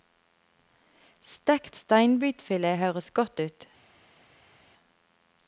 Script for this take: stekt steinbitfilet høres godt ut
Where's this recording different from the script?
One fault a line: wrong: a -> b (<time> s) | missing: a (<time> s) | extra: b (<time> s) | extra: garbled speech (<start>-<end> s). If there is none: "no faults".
no faults